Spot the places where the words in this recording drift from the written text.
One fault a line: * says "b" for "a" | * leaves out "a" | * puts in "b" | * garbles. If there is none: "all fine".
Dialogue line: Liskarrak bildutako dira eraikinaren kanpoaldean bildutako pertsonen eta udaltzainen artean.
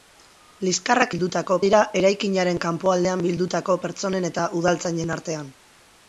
all fine